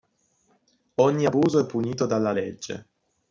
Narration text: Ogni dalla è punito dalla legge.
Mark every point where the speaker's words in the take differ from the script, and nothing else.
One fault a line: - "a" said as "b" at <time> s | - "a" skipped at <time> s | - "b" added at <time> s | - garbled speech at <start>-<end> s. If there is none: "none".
- "dalla" said as "abuso" at 1.2 s